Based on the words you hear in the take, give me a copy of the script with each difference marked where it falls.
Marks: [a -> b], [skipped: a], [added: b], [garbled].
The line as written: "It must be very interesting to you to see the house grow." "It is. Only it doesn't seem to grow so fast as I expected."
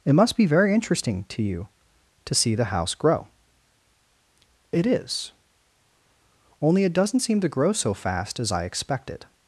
"It must be very interesting to you to see the house grow." "It is. Only it doesn't seem to grow so fast as I expected."